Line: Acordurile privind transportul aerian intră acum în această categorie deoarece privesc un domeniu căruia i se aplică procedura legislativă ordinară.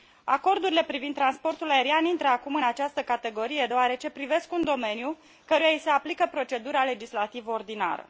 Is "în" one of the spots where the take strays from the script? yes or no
no